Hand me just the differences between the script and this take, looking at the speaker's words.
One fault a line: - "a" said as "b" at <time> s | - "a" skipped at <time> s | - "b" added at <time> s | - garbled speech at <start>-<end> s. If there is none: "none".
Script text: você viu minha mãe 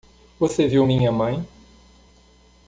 none